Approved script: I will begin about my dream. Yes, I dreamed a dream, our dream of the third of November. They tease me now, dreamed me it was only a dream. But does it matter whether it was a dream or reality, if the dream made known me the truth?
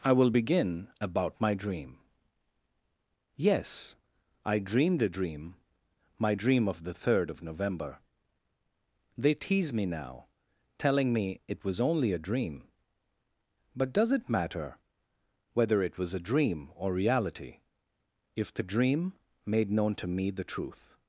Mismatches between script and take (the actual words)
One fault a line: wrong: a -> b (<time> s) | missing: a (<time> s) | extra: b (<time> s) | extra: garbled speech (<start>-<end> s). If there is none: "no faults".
wrong: our -> my (6.2 s)
wrong: dreamed -> telling (10.8 s)
extra: to (19.9 s)